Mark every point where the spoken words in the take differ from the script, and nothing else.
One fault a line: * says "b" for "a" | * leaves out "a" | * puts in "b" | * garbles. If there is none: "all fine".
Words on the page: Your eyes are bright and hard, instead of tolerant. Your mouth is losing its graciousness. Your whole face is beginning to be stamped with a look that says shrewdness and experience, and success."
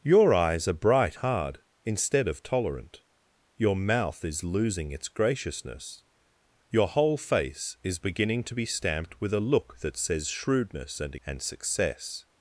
* leaves out "and"
* leaves out "experience"